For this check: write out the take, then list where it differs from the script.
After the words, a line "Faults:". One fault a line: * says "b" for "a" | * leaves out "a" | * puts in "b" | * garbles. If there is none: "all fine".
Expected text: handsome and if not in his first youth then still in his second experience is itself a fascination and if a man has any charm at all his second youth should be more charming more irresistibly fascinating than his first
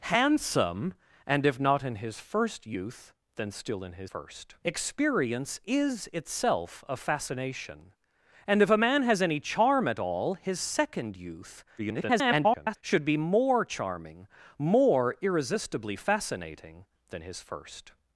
handsome and if not in his first youth then still in his first experience is itself a fascination and if a man has any charm at all his second youth [garbled] should be more charming more irresistibly fascinating than his first
Faults:
* says "first" for "second"
* garbles